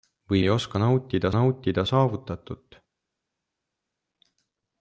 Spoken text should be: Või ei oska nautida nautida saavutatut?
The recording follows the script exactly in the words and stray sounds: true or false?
true